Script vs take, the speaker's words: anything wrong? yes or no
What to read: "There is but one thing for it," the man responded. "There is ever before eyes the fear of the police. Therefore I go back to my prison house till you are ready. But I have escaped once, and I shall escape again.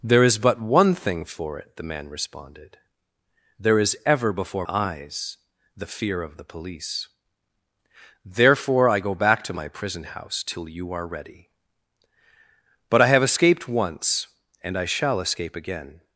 no